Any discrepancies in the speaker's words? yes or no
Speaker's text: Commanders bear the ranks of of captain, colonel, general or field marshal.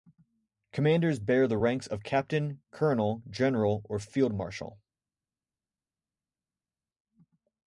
yes